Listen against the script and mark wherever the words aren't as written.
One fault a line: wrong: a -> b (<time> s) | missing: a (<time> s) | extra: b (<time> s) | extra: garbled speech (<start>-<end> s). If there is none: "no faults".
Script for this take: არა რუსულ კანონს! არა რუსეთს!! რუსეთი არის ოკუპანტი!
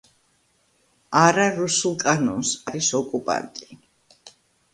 missing: არა რუსეთს რუსეთი (2.5 s)